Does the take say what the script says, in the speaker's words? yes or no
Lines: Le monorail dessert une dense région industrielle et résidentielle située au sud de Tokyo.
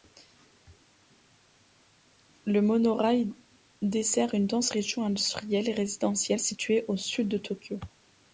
yes